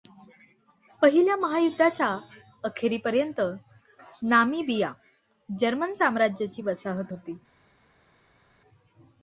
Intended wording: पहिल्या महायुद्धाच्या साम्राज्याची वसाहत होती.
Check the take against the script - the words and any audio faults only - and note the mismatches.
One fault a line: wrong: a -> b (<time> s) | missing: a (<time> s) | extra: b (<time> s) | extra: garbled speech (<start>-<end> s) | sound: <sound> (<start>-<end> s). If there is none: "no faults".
extra: अखेरीपर्यंत नामिबिया जर्मन (2.6 s)